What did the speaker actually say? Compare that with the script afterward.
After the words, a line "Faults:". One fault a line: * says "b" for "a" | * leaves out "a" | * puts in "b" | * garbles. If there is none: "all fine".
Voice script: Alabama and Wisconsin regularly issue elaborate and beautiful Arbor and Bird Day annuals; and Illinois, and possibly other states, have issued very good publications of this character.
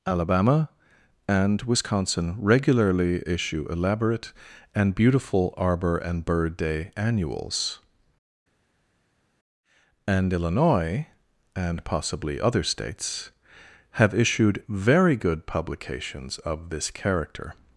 Alabama and Wisconsin regularly issue elaborate and beautiful Arbor and Bird Day annuals; and Illinois, and possibly other states, have issued very good publications of this character.
Faults:
all fine